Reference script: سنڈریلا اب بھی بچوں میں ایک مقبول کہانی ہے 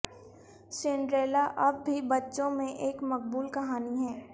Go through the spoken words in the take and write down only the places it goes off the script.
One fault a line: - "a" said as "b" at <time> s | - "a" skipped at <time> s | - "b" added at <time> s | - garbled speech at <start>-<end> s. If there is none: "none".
none